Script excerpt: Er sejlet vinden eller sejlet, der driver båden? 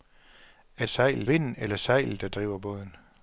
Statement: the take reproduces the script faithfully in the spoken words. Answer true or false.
true